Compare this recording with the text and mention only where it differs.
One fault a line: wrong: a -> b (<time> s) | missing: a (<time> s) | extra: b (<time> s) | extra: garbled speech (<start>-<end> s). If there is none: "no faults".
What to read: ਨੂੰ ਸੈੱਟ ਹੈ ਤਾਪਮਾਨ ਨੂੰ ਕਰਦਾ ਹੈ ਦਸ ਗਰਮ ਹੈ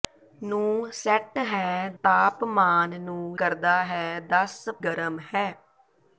no faults